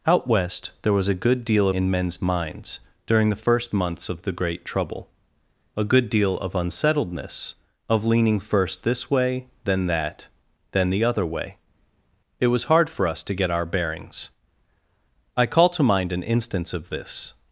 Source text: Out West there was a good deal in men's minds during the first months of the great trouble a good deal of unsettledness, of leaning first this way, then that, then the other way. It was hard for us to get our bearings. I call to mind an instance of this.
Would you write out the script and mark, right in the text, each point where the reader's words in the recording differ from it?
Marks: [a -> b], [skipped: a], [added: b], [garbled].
Out West there was a good deal in men's minds during the first months of the great trouble a good deal of unsettledness, of leaning first this way, then that, then the other way. It was hard for us to get our bearings. I call to mind an instance of this.